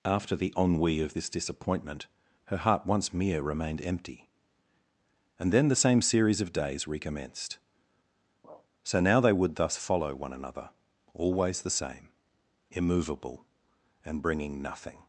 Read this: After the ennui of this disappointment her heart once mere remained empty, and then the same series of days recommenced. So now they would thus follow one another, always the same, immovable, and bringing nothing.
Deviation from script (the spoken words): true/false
false